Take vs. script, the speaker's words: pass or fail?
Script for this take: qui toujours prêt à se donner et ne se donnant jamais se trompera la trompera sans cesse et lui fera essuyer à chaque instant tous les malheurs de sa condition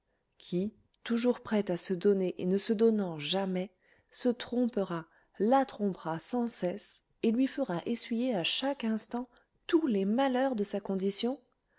pass